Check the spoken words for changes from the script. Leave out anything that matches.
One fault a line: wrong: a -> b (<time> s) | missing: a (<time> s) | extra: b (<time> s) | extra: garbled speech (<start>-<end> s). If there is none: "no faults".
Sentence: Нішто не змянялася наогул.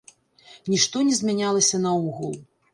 no faults